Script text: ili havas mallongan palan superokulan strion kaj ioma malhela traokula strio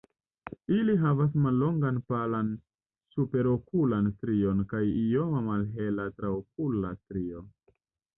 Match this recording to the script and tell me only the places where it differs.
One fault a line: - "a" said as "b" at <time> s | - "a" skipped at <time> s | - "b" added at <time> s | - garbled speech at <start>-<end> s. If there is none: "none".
none